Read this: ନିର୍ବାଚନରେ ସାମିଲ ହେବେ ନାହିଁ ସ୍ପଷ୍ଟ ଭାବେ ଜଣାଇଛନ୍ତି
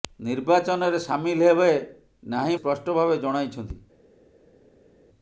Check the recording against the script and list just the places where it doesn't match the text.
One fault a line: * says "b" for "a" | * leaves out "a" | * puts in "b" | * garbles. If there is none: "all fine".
all fine